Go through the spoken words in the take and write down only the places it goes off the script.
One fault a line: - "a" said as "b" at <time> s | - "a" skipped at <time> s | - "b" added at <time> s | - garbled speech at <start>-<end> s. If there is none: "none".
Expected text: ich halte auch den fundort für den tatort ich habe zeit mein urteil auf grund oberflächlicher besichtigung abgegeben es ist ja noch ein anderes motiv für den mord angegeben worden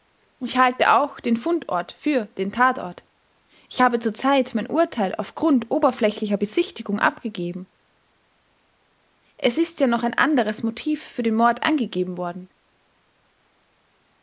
- "zur" added at 4.0 s